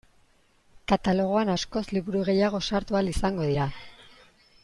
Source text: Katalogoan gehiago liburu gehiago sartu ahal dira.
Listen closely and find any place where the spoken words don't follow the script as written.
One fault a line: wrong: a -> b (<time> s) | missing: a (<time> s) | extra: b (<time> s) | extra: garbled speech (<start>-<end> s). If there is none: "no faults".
wrong: gehiago -> askoz (1.5 s)
extra: izango (3.1 s)